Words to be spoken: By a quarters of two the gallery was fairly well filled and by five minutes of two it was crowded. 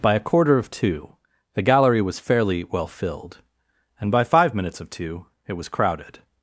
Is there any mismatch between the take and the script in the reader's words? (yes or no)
yes